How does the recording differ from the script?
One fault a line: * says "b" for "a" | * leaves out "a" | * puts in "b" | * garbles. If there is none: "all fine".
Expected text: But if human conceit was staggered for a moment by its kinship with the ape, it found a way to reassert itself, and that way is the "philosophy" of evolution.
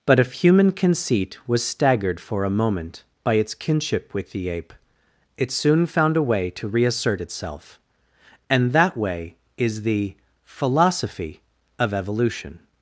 * puts in "soon"